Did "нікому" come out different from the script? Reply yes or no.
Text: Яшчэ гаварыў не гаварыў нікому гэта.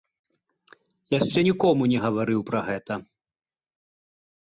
yes